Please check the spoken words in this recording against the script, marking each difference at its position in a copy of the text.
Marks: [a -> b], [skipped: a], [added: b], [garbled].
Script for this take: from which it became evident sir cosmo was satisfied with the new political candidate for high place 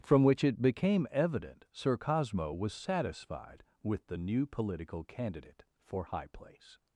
from which it became evident sir cosmo was satisfied with the new political candidate for high place